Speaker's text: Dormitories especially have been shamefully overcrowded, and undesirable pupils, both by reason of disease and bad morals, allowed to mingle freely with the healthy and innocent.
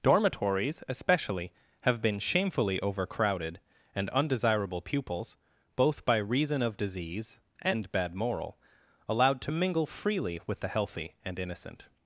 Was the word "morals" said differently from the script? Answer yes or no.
yes